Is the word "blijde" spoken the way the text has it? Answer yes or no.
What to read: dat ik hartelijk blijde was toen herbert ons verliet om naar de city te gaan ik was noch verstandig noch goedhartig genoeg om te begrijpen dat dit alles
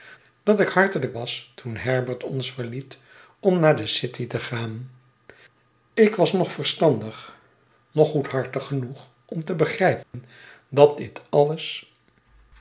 no